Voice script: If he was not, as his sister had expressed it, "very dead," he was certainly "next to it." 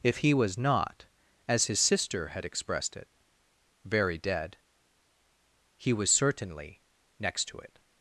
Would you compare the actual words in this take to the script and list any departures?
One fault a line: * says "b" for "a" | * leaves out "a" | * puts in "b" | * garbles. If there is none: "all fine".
all fine